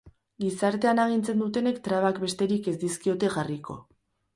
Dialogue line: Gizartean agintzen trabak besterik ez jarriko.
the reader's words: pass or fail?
fail